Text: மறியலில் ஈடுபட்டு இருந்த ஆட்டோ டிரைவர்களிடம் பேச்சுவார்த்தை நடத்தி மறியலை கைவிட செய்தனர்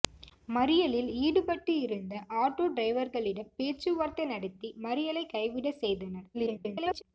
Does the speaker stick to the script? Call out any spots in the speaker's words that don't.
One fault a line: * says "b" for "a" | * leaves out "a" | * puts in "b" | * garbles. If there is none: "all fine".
* garbles